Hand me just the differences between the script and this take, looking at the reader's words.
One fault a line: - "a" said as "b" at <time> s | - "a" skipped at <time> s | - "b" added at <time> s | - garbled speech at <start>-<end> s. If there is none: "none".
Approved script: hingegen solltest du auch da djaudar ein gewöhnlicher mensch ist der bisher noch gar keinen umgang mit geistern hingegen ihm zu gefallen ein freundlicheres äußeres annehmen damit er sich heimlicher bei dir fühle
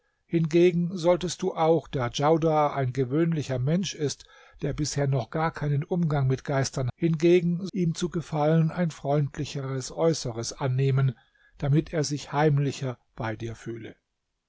none